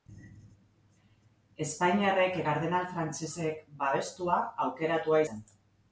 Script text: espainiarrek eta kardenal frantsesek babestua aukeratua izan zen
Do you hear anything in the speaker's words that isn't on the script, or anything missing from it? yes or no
yes